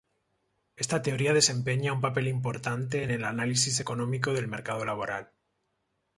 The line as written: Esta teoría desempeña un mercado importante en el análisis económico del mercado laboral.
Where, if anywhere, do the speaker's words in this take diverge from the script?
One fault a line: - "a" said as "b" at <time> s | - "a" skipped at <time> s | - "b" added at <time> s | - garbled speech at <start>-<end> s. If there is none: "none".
- "mercado" said as "papel" at 2.0 s